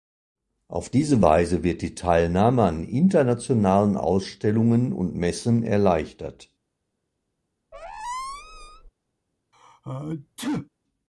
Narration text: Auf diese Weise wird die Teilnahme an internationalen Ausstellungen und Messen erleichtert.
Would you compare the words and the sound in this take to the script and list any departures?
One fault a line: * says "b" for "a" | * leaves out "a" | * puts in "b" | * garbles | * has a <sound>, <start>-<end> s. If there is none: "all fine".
* has a squeak, 7.7-8.9 s
* has a sneeze, 9.5-10.7 s